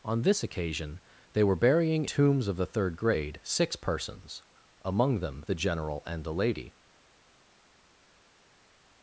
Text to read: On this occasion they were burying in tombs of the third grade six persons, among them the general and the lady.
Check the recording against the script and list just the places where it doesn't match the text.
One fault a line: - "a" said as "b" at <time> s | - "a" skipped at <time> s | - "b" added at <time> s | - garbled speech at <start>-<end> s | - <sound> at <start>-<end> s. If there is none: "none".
- "in" skipped at 2.0 s